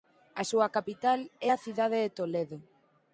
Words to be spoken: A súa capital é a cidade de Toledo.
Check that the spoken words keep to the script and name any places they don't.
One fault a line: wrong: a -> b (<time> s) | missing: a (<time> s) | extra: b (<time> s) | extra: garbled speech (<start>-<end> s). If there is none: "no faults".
no faults